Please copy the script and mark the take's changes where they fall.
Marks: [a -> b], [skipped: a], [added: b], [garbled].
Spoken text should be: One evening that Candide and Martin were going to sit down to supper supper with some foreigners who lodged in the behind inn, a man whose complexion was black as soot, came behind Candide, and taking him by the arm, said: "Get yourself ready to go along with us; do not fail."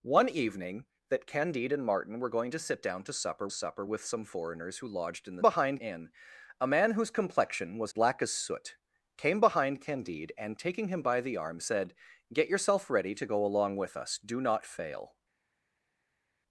One evening that Candide and Martin were going to sit down to supper supper with some foreigners who lodged in the behind inn, a man whose complexion was black as soot, came behind Candide, and taking him by the arm, said: "Get yourself ready to go along with us; do not fail."